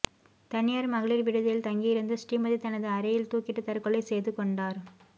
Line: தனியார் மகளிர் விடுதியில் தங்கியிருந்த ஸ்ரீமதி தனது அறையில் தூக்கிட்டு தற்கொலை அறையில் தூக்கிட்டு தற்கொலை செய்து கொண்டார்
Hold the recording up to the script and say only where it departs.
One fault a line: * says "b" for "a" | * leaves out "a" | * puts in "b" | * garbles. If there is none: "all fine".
* leaves out "அறையில் தூக்கிட்டு தற்கொலை"